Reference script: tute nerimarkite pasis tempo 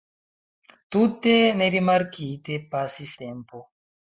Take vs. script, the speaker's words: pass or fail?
pass